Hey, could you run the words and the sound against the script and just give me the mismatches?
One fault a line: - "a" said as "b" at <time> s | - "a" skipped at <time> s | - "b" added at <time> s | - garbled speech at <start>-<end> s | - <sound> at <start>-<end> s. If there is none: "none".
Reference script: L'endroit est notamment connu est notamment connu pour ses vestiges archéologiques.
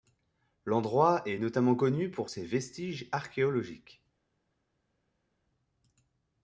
- "est notamment connu" skipped at 2.1 s